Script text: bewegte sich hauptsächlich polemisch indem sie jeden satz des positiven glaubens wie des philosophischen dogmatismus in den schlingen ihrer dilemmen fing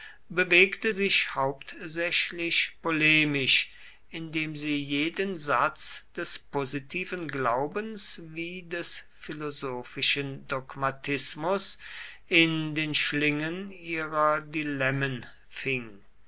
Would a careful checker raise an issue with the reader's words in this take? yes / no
no